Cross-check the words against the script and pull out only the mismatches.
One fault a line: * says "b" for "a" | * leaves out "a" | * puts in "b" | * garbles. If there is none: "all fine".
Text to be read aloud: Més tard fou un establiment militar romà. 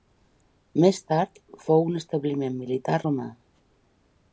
all fine